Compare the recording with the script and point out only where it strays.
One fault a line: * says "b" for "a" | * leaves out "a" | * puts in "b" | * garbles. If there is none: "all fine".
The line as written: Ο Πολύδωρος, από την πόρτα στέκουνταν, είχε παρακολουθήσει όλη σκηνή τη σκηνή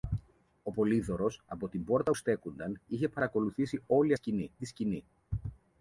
all fine